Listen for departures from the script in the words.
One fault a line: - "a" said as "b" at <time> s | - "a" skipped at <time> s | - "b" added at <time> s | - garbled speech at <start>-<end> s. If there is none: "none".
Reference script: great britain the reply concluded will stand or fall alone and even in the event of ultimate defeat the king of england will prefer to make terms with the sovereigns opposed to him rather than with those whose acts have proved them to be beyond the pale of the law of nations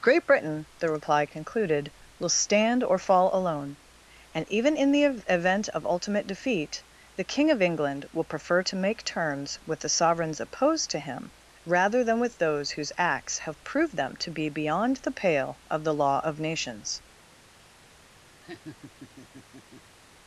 none